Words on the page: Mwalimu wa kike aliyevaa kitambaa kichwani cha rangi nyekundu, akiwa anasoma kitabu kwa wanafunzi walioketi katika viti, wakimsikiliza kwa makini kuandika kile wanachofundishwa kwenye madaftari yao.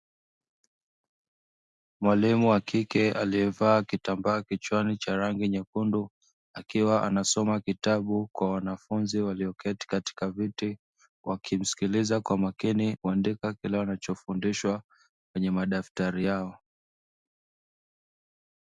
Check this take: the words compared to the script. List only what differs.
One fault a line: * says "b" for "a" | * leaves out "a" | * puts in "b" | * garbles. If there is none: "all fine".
all fine